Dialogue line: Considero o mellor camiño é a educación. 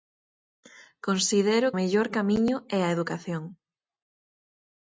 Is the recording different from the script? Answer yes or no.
no